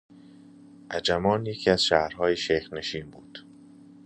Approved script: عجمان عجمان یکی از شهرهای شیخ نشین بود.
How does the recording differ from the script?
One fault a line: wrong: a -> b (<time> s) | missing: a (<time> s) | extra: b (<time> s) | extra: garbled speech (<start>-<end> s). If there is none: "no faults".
missing: عجمان (1.4 s)